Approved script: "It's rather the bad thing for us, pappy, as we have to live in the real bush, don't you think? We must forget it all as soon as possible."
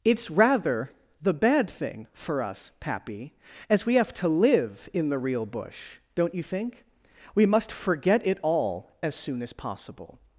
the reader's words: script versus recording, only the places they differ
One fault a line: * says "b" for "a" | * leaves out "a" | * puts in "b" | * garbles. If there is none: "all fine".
all fine